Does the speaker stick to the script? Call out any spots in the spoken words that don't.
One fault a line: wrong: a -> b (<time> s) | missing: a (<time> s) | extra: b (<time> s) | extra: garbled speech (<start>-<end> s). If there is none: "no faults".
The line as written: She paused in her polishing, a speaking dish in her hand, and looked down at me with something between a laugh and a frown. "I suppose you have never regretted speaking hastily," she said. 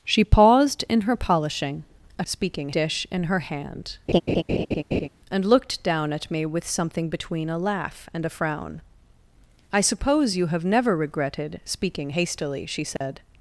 no faults